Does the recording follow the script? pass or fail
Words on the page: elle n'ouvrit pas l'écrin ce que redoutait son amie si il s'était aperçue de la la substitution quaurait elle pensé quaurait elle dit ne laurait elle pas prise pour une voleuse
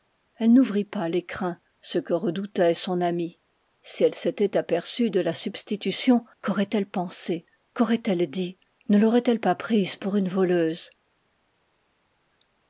fail